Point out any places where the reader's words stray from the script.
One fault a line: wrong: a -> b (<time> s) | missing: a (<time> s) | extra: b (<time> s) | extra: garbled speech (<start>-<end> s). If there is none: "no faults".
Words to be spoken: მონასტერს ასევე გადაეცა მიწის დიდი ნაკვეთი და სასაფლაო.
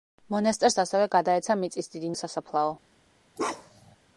missing: ნაკვეთი (2.1 s)